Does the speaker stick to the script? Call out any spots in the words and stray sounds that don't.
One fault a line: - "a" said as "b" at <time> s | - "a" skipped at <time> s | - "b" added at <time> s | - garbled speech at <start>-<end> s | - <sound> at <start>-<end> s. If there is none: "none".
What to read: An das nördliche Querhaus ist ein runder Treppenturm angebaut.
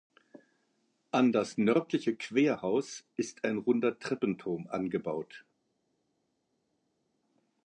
none